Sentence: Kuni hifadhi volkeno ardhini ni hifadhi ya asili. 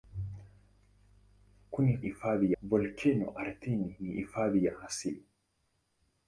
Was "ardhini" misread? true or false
false